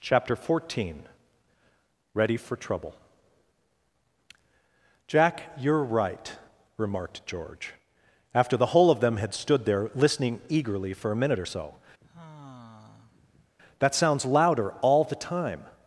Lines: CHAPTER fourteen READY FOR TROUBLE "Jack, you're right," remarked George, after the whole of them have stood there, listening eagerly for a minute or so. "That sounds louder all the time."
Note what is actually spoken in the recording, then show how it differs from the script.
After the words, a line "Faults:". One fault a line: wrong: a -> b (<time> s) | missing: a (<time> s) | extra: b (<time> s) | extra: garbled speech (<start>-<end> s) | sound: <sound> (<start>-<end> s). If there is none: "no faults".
CHAPTER fourteen READY FOR TROUBLE "Jack, you're right," remarked George, after the whole of them had stood there, listening eagerly for a minute or so. "That sounds louder all the time."
Faults:
wrong: have -> had (9.2 s)
sound: sigh (12.0-13.5 s)